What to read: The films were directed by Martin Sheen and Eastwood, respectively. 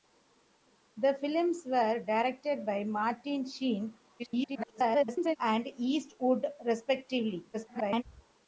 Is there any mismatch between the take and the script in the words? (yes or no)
yes